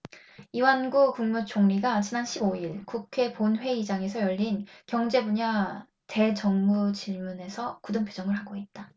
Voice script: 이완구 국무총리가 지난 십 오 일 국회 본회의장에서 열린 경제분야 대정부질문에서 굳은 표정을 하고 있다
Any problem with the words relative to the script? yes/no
no